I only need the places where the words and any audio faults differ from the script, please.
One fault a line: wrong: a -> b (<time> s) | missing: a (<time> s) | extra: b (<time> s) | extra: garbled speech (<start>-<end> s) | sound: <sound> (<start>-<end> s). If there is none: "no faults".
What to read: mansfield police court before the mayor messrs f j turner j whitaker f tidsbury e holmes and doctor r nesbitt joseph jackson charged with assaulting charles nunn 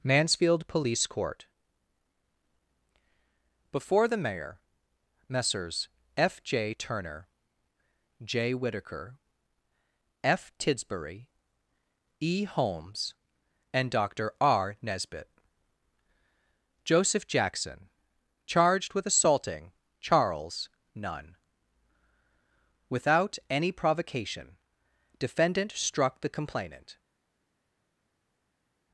extra: without any provocation defendant struck the complainant (22.9 s)